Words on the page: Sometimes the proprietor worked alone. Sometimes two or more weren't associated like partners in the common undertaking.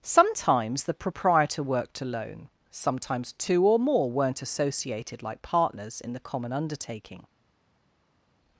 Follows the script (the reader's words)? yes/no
yes